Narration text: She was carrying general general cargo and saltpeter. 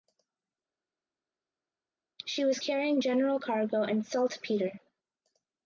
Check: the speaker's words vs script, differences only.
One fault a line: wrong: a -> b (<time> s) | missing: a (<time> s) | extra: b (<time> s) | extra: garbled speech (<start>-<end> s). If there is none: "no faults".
missing: general (3.4 s)